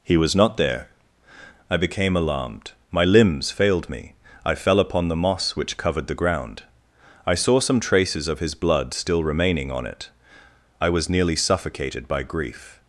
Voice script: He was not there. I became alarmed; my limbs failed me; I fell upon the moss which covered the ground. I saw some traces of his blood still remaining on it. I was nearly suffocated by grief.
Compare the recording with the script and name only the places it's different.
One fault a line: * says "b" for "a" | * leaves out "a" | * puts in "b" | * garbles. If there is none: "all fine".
all fine